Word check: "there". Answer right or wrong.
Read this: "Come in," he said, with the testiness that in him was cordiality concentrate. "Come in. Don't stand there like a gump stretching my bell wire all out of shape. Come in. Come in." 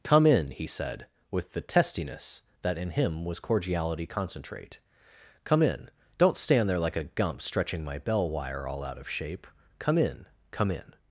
right